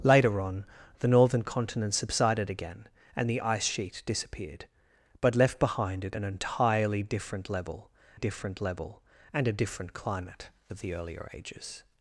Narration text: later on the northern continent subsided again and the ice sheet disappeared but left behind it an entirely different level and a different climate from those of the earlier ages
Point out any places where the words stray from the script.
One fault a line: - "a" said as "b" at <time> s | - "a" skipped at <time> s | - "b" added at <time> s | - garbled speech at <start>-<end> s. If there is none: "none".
- "different level" added at 8.1 s
- "from those" skipped at 10.5 s